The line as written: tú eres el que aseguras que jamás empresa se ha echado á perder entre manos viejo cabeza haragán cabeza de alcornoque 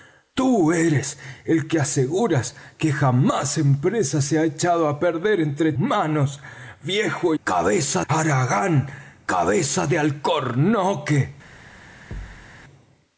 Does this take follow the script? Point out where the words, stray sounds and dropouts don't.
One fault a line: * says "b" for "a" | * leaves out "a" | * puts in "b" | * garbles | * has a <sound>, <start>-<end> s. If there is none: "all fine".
* has a thud, 12.1-12.5 s